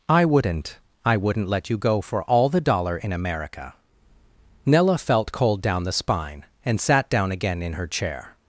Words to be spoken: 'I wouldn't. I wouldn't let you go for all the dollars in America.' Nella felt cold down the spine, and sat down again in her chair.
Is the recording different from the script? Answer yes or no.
yes